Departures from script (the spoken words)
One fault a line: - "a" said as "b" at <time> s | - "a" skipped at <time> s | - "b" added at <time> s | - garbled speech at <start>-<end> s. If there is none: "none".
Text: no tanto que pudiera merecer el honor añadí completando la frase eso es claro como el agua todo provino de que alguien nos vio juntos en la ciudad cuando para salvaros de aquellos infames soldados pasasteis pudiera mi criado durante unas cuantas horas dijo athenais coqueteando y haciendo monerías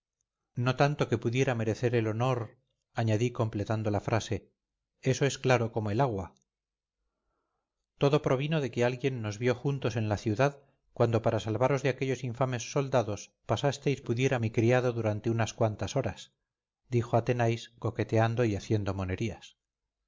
none